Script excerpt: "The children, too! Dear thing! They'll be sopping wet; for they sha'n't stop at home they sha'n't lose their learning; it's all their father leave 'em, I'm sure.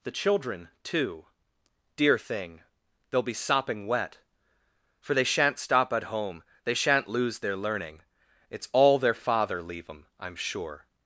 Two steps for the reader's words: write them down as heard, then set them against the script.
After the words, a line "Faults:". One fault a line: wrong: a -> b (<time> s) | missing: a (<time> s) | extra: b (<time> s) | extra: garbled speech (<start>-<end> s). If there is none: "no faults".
"The children, too! Dear thing! They'll be sopping wet; for they sha'n't stop at home they sha'n't lose their learning; it's all their father leave 'em, I'm sure.
Faults:
no faults